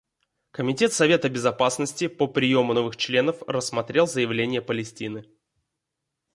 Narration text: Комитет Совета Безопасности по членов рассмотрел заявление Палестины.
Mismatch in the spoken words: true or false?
true